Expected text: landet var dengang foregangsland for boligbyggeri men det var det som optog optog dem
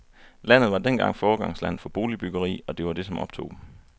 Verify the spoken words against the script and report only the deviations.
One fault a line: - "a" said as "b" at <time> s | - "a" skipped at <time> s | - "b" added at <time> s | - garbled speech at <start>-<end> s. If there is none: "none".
- "men" said as "og" at 2.7 s
- "optog" skipped at 3.5 s